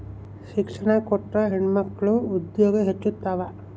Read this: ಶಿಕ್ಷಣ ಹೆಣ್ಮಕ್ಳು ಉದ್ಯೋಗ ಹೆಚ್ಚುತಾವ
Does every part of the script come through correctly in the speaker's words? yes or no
no